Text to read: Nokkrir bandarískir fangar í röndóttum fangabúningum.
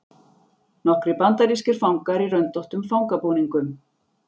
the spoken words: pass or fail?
pass